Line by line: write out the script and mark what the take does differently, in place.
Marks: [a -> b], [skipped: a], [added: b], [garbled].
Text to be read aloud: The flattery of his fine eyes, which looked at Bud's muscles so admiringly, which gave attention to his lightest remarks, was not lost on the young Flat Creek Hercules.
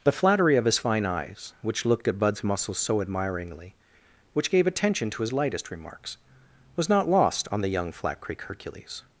The flattery of his fine eyes, which looked at Bud's muscles so admiringly, which gave attention to his lightest remarks, was not lost on the young Flat Creek Hercules.